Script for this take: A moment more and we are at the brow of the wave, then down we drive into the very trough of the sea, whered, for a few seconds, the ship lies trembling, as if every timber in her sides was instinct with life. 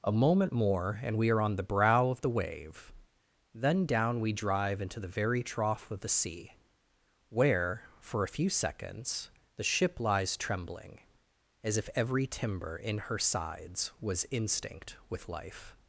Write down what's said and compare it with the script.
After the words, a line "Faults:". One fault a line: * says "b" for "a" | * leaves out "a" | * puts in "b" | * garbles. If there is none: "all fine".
A moment more and we are on the brow of the wave, then down we drive into the very trough of the sea, where, for a few seconds, the ship lies trembling, as if every timber in her sides was instinct with life.
Faults:
* says "on" for "at"
* says "where" for "whered"